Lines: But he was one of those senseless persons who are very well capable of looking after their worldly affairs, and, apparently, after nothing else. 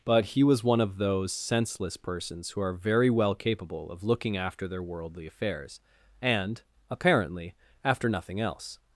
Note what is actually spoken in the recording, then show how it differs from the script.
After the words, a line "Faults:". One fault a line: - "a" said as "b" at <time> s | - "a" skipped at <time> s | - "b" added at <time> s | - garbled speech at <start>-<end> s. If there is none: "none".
But he was one of those senseless persons who are very well capable of looking after their worldly affairs, and, apparently, after nothing else.
Faults:
none